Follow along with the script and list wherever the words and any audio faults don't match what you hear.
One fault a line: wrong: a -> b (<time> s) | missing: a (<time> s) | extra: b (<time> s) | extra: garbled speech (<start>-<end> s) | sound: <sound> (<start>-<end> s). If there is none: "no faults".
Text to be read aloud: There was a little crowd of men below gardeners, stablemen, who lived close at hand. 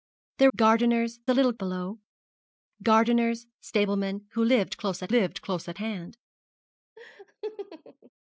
wrong: was -> gardeners (0.6 s)
missing: crowd of men (1.5 s)
extra: lived close at (5.1 s)
sound: laugh (7.0-8.1 s)